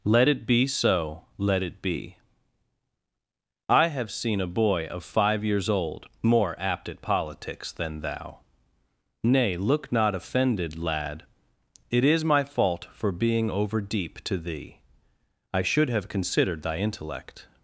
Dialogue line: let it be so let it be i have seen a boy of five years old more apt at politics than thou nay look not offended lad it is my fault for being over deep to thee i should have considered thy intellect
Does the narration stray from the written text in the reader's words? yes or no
no